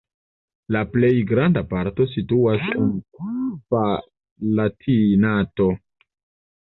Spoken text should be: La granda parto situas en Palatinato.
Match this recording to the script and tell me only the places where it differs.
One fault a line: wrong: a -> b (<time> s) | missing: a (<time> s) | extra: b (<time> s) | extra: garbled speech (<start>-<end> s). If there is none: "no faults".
extra: plej (0.9 s)